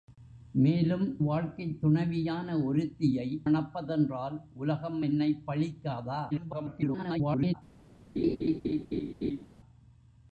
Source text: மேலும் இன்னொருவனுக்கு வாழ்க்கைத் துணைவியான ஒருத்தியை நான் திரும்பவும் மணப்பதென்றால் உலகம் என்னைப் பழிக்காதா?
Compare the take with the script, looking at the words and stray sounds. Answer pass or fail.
fail